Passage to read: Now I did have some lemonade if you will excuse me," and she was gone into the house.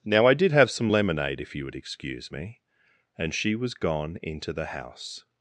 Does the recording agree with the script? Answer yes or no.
no